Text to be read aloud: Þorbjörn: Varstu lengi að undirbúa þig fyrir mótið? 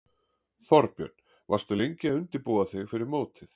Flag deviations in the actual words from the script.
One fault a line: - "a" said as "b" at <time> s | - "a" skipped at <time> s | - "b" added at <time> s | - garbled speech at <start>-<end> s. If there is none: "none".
none